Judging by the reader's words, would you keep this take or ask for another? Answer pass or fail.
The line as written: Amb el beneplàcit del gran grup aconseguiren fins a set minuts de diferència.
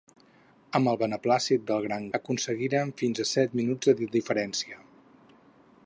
fail